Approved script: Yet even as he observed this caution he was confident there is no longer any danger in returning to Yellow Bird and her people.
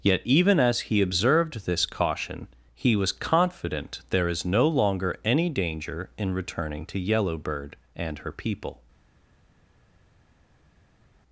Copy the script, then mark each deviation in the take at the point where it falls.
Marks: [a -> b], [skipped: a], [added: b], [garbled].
Yet even as he observed this caution he was confident there is no longer any danger in returning to Yellow Bird and her people.